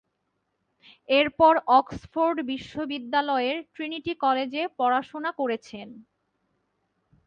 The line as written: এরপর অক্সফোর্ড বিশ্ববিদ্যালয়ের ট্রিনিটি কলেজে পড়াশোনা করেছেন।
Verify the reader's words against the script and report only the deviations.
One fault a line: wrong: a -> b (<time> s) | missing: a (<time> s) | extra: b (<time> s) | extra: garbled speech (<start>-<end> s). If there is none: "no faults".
no faults